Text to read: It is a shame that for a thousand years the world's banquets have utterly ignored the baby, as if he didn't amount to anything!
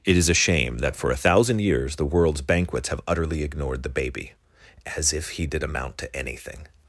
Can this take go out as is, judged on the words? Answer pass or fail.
fail